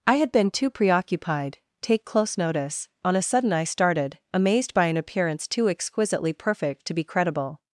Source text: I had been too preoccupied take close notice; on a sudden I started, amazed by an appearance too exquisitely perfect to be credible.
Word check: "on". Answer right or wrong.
right